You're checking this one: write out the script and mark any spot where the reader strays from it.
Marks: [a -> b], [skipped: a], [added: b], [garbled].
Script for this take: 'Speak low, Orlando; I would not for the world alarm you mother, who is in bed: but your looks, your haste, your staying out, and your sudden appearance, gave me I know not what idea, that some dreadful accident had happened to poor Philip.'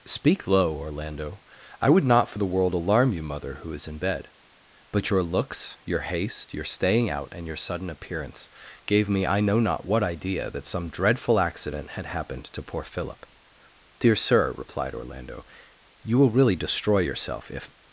'Speak low, Orlando; I would not for the world alarm you mother, who is in bed: but your looks, your haste, your staying out, and your sudden appearance, gave me I know not what idea, that some dreadful accident had happened to poor Philip.' [added: Dear Sir replied Orlando you will really destroy yourself if]